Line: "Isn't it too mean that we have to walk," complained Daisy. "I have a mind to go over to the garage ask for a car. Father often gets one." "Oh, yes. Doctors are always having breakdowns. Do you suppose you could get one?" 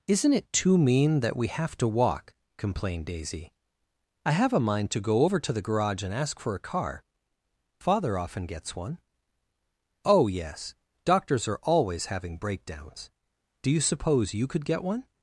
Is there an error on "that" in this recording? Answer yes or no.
no